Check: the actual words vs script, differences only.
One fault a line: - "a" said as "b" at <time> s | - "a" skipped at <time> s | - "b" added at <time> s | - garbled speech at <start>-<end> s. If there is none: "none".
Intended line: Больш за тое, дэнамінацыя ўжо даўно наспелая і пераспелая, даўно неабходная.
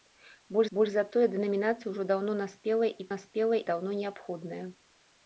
- "больш" added at 0.8 s
- "пераспелая" said as "наспелая" at 3.1 s